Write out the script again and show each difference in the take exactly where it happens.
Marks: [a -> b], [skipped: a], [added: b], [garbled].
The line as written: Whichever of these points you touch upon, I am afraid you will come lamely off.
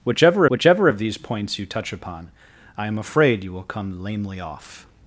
Whichever [added: whichever] of these points you touch upon, I am afraid you will come lamely off.